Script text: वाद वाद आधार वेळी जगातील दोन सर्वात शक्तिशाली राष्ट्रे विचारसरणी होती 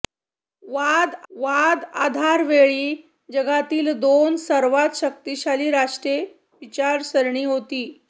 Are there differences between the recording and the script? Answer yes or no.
no